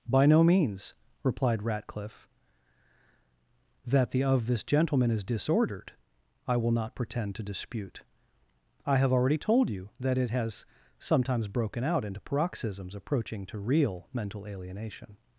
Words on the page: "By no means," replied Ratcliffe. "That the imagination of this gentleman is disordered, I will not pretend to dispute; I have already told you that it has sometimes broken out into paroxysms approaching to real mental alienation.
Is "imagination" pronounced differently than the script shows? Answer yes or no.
yes